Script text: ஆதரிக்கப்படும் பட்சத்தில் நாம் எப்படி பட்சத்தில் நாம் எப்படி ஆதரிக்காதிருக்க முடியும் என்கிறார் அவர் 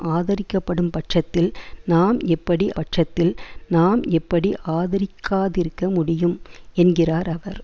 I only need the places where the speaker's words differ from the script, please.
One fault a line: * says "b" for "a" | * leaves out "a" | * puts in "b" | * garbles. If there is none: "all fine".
all fine